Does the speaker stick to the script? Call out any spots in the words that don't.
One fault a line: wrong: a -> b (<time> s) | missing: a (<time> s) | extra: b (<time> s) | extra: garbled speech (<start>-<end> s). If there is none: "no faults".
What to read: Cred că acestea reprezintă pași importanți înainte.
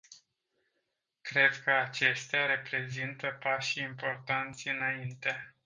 no faults